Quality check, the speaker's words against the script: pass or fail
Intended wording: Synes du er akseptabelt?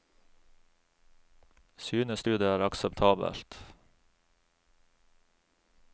fail